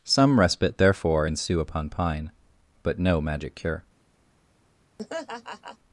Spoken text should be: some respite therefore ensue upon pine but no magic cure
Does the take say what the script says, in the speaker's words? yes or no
yes